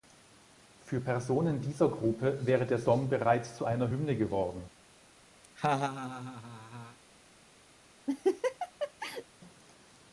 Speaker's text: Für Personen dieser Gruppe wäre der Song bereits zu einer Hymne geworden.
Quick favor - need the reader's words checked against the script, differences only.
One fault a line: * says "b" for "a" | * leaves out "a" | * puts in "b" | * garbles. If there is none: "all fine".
all fine